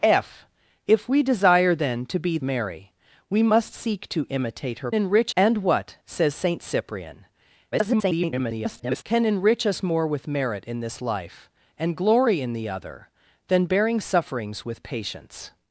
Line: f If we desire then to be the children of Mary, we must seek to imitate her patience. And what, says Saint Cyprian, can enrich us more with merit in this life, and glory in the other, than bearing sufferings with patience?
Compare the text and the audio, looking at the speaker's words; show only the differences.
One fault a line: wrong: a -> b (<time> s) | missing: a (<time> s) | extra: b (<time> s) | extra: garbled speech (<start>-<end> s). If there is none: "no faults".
missing: the children of (2.4 s)
wrong: patience -> enrich (4.9 s)
extra: garbled speech (7.7-9.0 s)